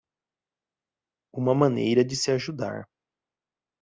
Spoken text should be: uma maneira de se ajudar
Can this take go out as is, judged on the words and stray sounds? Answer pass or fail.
pass